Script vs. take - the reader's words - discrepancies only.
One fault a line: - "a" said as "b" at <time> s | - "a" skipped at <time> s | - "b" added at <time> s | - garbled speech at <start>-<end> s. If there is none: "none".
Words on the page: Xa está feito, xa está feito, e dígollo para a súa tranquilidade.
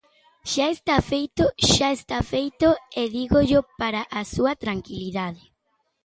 none